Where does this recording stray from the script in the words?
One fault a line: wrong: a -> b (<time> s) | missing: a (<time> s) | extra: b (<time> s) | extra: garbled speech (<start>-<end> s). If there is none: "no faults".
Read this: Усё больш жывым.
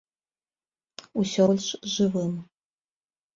no faults